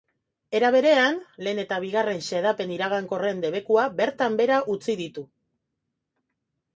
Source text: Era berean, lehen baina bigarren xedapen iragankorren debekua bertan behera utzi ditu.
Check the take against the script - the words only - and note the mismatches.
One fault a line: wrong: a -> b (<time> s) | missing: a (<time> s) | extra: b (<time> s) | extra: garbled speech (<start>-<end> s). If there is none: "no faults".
wrong: baina -> eta (1.6 s)